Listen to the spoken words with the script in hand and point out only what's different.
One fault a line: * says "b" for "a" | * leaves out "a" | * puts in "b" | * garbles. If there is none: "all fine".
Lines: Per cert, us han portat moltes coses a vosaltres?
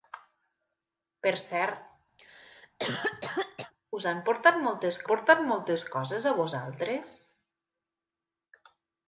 * puts in "portat moltes"